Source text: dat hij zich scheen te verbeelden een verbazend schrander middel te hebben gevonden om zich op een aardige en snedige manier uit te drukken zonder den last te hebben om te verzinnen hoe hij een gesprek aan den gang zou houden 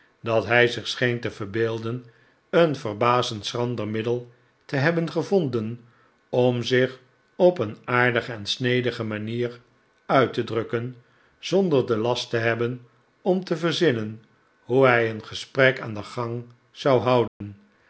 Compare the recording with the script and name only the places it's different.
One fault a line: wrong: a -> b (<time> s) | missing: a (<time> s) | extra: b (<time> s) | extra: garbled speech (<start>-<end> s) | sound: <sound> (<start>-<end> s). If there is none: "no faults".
sound: dropout (17.3-17.4 s)